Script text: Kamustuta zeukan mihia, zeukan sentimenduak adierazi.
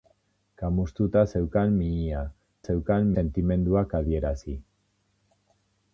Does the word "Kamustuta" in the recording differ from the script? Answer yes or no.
no